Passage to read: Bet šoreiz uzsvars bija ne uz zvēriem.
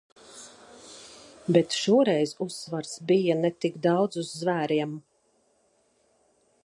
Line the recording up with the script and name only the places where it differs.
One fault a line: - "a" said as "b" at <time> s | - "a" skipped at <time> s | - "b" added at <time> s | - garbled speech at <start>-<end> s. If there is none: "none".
- "tik daudz" added at 3.6 s